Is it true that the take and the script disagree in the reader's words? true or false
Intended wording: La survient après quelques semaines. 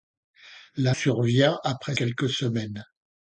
false